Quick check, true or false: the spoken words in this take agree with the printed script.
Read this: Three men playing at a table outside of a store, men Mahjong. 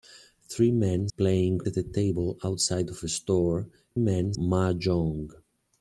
true